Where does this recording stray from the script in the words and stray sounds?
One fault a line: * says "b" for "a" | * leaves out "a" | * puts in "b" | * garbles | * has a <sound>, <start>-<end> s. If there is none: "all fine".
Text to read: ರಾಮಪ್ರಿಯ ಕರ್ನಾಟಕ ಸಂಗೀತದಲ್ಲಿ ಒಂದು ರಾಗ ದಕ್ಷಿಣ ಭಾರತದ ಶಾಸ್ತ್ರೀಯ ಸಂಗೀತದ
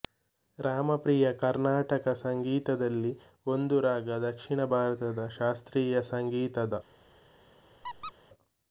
* has a squeak, 7.8-8.1 s